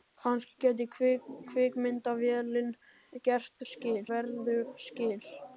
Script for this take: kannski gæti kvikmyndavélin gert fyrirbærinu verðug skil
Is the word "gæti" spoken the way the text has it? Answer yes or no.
yes